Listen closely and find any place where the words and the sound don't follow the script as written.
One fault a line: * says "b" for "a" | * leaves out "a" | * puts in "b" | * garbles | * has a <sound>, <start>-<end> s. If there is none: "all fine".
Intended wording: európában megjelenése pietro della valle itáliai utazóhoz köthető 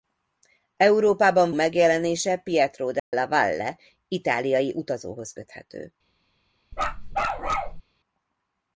* has a dropout, 3.0-3.1 s
* has a bark, 6.7-7.8 s